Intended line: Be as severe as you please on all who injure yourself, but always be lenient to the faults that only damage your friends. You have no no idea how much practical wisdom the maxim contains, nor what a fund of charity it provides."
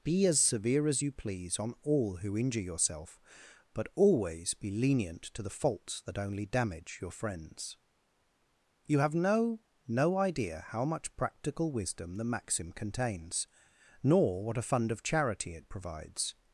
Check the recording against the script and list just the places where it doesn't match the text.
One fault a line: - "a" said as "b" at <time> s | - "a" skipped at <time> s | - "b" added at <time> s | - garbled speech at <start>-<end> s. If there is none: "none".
none